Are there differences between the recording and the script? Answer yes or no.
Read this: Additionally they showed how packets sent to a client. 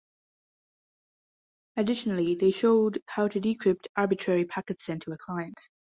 yes